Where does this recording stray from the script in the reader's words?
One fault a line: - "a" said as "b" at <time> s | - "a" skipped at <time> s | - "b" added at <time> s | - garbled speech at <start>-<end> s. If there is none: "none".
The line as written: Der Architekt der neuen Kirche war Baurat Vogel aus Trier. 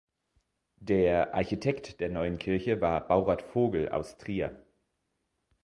none